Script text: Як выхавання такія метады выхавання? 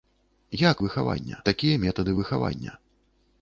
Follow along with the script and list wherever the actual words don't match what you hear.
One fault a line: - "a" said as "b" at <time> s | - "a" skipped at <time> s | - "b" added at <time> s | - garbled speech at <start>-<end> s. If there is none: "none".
none